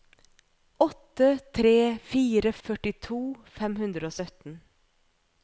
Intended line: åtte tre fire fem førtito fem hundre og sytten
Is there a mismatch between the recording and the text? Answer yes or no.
yes